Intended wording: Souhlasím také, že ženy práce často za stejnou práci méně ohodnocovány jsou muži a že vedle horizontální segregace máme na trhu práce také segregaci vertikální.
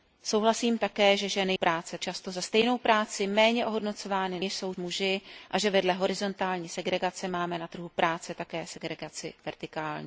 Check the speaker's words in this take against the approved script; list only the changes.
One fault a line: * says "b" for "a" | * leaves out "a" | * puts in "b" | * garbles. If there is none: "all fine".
all fine